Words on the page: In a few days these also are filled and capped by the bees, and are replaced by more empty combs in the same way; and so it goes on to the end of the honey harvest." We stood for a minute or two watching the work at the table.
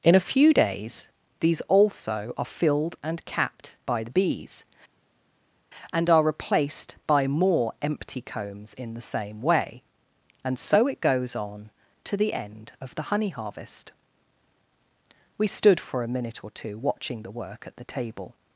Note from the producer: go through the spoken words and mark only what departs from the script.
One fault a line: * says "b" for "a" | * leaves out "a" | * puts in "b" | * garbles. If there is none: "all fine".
all fine